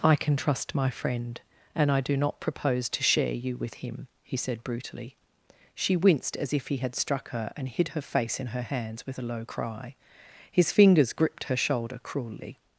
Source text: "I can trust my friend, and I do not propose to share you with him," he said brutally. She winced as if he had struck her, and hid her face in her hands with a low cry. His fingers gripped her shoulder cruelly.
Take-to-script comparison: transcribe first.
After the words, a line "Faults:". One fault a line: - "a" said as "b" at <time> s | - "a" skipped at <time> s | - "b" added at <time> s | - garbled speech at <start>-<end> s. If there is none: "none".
"I can trust my friend, and I do not propose to share you with him," he said brutally. She winced as if he had struck her, and hid her face in her hands with a low cry. His fingers gripped her shoulder cruelly.
Faults:
none